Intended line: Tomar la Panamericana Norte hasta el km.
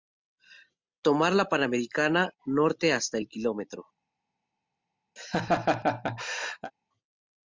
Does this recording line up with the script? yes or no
yes